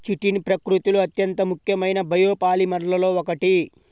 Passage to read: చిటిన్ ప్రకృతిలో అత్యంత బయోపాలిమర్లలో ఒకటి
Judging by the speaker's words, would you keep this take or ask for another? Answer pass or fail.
fail